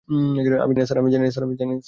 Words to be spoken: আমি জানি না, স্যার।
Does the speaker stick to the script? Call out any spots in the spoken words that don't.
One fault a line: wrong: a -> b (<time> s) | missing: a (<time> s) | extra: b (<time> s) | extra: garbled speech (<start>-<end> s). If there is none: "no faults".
missing: জানি (0.7 s)